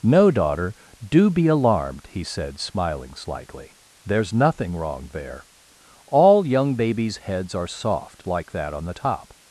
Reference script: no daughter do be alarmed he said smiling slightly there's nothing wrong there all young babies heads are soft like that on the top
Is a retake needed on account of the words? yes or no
no